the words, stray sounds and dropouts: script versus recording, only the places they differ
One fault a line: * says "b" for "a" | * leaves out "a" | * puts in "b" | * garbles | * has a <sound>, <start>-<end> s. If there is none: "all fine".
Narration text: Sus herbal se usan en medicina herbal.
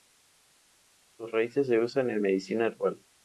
* says "raíces" for "herbal"